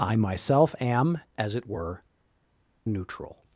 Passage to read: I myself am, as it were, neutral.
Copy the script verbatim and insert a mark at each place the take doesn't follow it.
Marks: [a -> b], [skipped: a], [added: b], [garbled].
I myself am, as it were, neutral.